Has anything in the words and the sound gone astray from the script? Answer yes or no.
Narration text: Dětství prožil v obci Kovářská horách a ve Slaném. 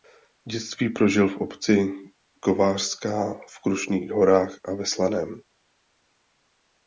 yes